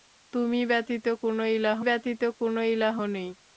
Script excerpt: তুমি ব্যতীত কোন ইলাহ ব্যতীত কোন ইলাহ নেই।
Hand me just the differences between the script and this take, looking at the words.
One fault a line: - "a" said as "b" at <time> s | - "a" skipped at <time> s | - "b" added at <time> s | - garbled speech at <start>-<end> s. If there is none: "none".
none